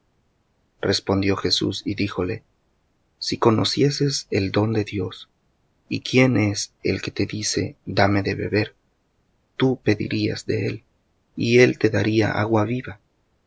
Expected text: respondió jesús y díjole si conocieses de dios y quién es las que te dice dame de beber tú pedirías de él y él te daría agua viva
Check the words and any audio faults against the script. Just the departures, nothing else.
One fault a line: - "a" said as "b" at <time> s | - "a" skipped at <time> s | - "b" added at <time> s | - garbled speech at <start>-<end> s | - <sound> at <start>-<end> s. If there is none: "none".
- "el don" added at 4.3 s
- "las" said as "el" at 6.8 s